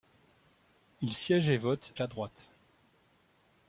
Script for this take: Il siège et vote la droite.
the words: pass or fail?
pass